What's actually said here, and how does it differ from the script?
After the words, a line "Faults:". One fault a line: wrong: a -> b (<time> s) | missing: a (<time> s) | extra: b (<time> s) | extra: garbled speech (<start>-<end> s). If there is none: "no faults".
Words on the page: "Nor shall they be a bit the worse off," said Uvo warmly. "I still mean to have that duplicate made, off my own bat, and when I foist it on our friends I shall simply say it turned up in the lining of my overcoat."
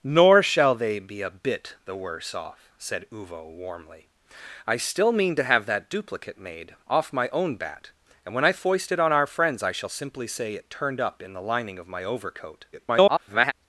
"Nor shall they be a bit the worse off," said Uvo warmly. "I still mean to have that duplicate made, off my own bat, and when I foist it on our friends I shall simply say it turned up in the lining of my overcoat." [garbled]
Faults:
extra: garbled speech (12.7-13.5 s)